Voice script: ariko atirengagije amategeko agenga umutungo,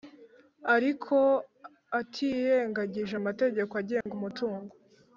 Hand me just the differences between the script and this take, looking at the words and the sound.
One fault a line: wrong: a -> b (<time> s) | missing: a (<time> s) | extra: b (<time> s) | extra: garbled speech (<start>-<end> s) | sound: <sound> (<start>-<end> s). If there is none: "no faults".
sound: dropout (4.0-4.1 s)